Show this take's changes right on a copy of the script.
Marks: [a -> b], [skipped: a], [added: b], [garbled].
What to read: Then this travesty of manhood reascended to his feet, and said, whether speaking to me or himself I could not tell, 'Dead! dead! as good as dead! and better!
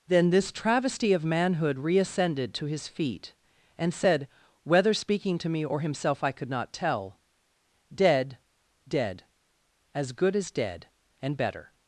Then this travesty of manhood reascended to his feet, and said, whether speaking to me or himself I could not tell, 'Dead! dead! as good as dead! and better!